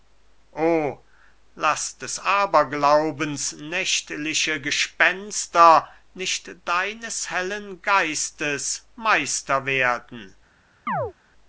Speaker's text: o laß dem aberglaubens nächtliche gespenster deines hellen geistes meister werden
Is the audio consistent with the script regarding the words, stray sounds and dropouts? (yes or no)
no